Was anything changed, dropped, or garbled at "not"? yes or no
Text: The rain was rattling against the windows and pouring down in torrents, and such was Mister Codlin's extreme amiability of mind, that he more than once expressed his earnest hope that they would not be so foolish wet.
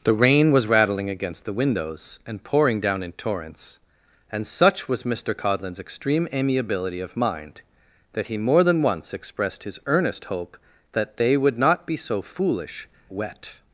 no